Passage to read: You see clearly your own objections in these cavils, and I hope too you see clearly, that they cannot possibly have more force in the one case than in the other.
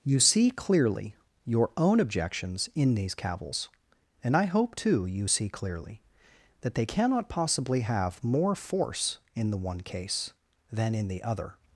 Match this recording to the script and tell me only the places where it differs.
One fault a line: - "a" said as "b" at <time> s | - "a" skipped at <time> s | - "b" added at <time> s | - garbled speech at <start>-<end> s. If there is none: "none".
none